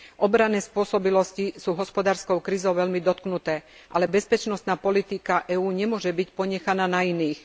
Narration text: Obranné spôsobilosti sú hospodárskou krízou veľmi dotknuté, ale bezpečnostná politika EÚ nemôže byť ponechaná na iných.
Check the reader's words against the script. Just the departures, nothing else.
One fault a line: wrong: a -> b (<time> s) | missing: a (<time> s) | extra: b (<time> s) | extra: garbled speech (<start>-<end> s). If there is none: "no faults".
no faults